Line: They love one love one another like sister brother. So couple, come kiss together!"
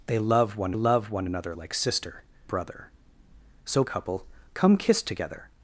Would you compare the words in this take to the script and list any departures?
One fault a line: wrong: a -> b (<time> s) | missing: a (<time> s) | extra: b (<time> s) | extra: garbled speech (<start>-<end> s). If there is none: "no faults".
no faults